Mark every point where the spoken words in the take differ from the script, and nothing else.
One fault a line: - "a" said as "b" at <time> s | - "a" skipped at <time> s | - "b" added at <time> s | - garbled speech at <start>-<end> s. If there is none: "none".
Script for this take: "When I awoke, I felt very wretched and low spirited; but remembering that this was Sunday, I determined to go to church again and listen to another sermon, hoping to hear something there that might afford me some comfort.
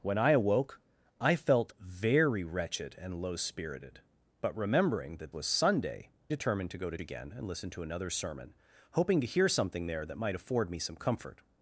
- "this" skipped at 5.3 s
- "I" skipped at 6.1 s
- "church" skipped at 7.0 s